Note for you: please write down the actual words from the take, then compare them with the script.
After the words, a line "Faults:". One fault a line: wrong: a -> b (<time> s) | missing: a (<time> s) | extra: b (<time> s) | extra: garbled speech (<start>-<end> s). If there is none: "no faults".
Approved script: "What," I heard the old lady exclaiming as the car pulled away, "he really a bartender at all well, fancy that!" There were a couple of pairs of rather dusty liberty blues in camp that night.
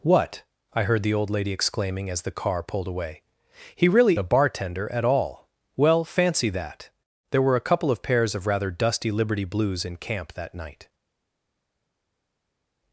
"What," I heard the old lady exclaiming as the car pulled away, "he really a bartender at all well, fancy that!" There were a couple of pairs of rather dusty liberty blues in camp that night.
Faults:
no faults